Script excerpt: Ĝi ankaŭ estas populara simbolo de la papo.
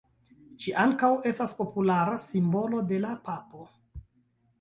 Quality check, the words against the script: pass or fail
pass